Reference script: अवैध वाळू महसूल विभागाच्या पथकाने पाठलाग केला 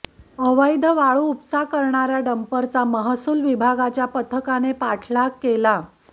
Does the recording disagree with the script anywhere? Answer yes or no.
yes